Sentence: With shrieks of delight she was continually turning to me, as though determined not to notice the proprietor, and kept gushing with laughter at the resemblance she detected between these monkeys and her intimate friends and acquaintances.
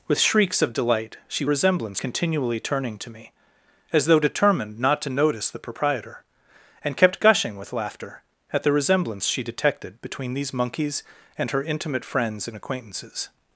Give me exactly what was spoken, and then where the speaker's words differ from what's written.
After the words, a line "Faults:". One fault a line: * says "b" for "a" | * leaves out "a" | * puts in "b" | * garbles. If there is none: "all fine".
With shrieks of delight she resemblance continually turning to me, as though determined not to notice the proprietor, and kept gushing with laughter at the resemblance she detected between these monkeys and her intimate friends and acquaintances.
Faults:
* says "resemblance" for "was"